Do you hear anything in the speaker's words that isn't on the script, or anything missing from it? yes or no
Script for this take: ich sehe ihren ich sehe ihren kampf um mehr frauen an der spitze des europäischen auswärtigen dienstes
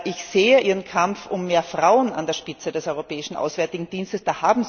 yes